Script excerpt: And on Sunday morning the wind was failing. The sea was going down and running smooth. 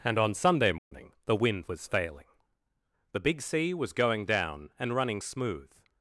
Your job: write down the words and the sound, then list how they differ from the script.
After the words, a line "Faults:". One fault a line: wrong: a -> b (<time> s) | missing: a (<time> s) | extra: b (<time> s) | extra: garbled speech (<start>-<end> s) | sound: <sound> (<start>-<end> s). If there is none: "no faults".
And on Sunday morning the wind was failing. The big sea was going down and running smooth.
Faults:
sound: dropout (0.8-0.9 s)
extra: big (3.2 s)